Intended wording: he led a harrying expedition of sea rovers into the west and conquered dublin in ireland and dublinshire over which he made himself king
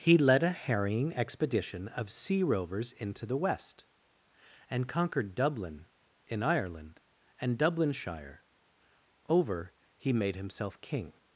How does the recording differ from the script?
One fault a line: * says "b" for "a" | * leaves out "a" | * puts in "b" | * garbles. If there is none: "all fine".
* leaves out "which"